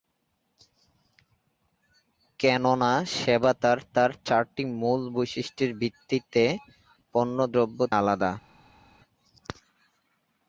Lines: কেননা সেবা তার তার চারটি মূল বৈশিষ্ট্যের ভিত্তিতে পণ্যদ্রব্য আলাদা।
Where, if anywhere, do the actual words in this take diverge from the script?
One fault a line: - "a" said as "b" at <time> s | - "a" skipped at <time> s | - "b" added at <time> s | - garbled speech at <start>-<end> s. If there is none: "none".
none